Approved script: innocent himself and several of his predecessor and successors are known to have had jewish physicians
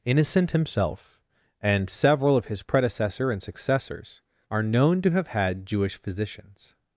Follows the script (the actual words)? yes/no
yes